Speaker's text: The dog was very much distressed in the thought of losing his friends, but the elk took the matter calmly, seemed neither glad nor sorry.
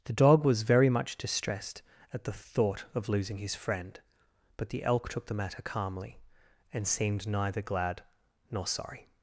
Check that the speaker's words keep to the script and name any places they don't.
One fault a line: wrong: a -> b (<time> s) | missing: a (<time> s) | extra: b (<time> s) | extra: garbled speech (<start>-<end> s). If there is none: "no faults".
wrong: in -> at (2.1 s)
wrong: friends -> friend (3.5 s)
extra: and (6.7 s)